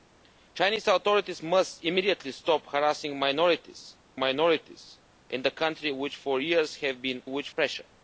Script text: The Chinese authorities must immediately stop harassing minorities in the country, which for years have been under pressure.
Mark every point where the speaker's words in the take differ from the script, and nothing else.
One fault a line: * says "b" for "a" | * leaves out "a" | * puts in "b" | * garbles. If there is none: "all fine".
* puts in "minorities"
* says "which" for "under"